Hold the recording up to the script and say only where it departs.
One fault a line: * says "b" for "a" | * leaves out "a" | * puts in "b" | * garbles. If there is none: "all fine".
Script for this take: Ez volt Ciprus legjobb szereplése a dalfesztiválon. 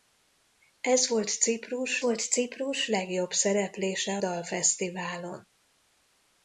* puts in "volt Ciprus"
* leaves out "a"